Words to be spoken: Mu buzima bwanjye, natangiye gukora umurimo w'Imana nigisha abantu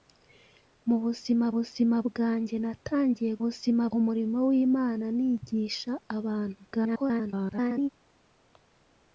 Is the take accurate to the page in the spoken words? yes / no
no